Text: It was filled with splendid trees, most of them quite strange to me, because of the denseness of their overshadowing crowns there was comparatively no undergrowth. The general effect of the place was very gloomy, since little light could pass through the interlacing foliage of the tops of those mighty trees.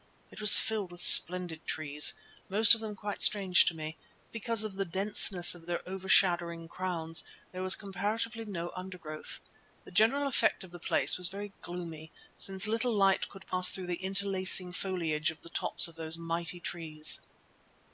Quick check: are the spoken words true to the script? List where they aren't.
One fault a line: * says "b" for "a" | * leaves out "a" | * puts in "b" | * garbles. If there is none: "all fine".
all fine